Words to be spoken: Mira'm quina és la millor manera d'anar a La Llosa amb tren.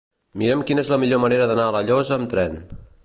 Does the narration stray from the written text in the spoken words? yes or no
no